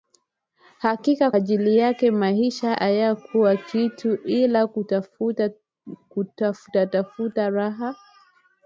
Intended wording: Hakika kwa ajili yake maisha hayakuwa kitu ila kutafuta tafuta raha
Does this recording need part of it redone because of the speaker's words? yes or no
yes